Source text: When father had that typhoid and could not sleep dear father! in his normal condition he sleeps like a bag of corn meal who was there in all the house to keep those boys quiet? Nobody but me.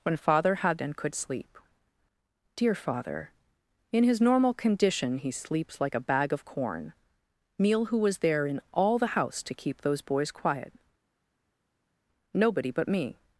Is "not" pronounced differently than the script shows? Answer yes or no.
yes